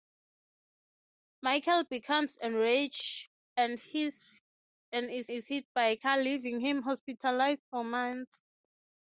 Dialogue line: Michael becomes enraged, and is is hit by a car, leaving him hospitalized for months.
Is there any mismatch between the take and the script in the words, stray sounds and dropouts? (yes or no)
no